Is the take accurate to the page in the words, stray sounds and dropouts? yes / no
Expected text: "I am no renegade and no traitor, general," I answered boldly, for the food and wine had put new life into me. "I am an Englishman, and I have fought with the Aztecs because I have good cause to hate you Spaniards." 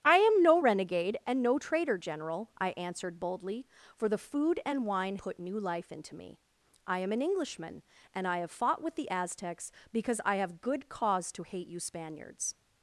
no